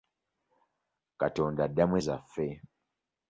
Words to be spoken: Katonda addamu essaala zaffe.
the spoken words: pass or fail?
fail